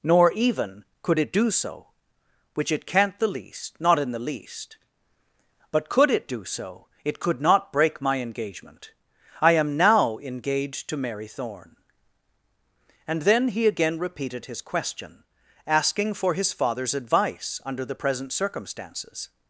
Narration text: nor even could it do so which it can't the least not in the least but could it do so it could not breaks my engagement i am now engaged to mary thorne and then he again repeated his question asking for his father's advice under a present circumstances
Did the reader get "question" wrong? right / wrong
right